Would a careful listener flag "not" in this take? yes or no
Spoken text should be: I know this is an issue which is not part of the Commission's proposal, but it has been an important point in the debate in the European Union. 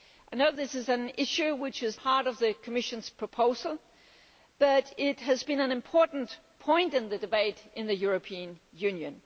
yes